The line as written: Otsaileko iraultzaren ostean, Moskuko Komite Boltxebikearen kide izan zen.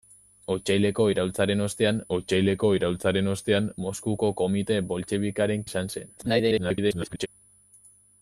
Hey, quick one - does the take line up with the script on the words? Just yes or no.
no